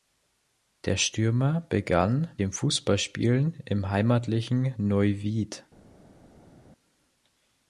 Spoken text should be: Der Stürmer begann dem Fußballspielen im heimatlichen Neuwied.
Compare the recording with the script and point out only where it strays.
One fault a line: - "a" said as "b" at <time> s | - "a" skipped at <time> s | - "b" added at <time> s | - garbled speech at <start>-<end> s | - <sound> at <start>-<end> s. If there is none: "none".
none